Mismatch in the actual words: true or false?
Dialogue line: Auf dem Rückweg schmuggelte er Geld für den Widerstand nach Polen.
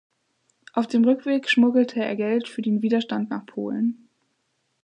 false